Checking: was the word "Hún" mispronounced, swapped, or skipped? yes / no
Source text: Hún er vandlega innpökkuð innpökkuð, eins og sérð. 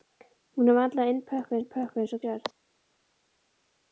no